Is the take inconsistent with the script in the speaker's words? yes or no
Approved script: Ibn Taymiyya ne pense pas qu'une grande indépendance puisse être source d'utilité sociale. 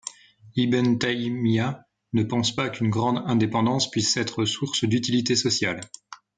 no